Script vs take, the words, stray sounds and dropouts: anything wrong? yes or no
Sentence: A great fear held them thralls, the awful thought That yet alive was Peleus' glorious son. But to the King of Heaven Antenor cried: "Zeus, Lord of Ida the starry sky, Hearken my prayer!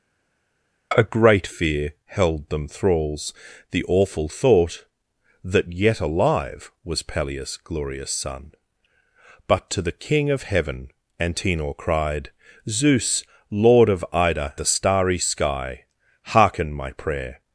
no